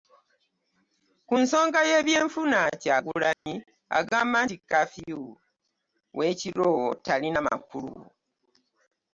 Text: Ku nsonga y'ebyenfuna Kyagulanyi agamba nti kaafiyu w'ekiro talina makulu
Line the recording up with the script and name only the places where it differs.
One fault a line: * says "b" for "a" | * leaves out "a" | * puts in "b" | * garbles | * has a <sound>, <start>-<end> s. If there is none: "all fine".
* has a dropout, 3.3-3.5 s